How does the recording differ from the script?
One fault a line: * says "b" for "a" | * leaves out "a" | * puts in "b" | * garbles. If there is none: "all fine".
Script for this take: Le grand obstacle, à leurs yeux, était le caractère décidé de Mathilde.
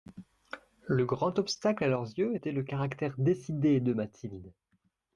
all fine